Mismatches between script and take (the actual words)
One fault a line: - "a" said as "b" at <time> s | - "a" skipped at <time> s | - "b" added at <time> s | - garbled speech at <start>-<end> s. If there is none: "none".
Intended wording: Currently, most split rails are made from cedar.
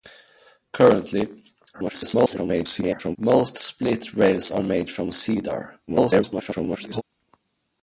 - garbled speech at 1.7-3.2 s
- garbled speech at 5.9-7.0 s